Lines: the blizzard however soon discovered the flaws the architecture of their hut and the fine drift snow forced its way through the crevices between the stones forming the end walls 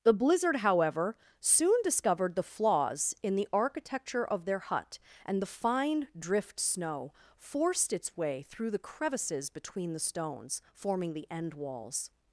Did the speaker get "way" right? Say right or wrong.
right